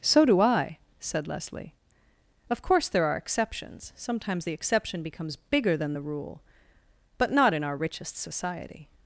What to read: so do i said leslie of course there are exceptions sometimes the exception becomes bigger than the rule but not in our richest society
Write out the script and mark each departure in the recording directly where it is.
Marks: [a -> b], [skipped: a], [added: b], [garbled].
so do i said leslie of course there are exceptions sometimes the exception becomes bigger than the rule but not in our richest society